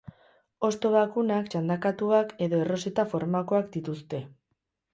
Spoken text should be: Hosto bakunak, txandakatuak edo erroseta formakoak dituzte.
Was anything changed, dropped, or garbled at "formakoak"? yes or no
no